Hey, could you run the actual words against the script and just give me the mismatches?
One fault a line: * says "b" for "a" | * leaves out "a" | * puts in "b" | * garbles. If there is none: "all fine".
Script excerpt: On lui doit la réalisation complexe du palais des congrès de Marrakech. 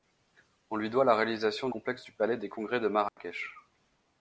all fine